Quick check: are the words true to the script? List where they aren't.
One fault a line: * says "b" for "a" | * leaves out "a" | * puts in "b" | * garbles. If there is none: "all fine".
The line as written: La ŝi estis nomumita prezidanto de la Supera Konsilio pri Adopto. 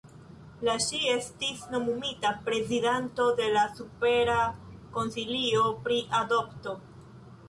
all fine